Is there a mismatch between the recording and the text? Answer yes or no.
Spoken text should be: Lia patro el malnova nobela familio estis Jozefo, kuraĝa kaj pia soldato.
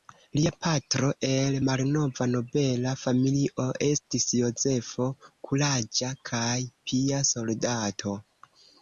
no